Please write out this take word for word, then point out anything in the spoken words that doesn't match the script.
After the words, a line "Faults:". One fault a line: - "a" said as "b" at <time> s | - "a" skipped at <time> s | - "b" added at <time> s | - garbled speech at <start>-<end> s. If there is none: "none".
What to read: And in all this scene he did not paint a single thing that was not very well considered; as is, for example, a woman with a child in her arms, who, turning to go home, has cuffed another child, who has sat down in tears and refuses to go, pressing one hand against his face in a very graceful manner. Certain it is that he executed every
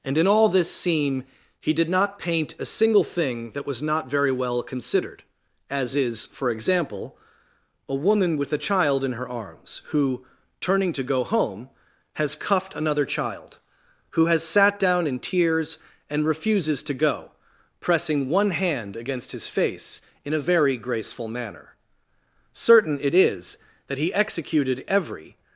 And in all this scene he did not paint a single thing that was not very well considered; as is, for example, a woman with a child in her arms, who, turning to go home, has cuffed another child, who has sat down in tears and refuses to go, pressing one hand against his face in a very graceful manner. Certain it is that he executed every
Faults:
none